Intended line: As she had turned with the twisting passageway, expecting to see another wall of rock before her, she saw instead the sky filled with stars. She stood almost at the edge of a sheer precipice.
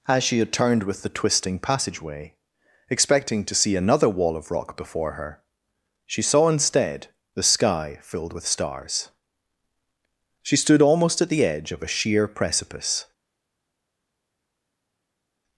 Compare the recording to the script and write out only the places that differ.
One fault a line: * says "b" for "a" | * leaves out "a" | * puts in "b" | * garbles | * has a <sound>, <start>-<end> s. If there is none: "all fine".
all fine